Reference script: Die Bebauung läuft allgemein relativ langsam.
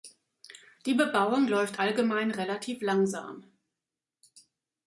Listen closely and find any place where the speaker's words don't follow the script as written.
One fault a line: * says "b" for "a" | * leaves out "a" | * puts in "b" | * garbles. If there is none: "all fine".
all fine